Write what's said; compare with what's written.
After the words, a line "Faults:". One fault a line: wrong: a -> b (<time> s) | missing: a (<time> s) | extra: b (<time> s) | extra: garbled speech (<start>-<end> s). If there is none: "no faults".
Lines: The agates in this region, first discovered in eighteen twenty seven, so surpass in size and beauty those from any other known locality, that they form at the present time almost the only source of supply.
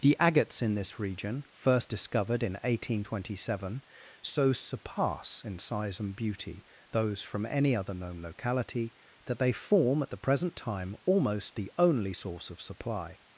The agates in this region, first discovered in eighteen twenty seven, so surpass in size and beauty those from any other known locality, that they form at the present time almost the only source of supply.
Faults:
no faults